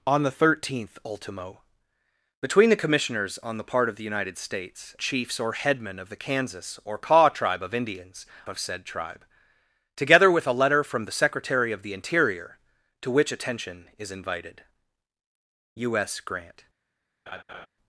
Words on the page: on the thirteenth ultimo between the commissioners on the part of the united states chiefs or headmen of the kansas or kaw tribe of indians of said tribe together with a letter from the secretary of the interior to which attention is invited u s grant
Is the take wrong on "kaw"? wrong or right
right